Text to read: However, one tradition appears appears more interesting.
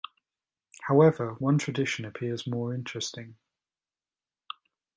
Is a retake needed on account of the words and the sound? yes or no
yes